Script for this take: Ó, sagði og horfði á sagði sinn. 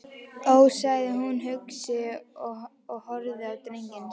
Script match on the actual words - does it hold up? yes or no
no